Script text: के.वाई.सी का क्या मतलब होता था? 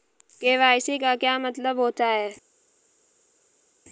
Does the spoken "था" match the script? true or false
false